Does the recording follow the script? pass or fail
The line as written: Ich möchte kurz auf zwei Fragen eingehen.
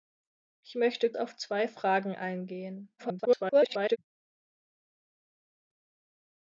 fail